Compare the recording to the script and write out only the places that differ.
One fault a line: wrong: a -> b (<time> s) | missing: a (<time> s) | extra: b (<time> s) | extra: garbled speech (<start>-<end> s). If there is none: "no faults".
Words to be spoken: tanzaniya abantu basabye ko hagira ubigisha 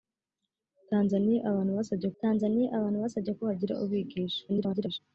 extra: tanzaniya abantu basabye (2.2 s)
extra: garbled speech (4.5-5.0 s)